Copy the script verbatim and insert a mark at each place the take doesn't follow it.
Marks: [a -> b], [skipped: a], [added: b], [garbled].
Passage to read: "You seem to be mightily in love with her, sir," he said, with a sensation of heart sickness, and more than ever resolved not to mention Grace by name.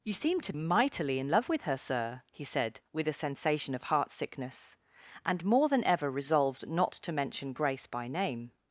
"You seem to [skipped: be] mightily in love with her, sir," he said, with a sensation of heart sickness, and more than ever resolved not to mention Grace by name.